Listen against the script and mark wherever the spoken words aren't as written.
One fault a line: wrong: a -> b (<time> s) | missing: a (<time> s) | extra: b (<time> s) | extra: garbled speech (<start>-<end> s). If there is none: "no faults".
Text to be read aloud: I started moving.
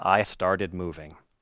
no faults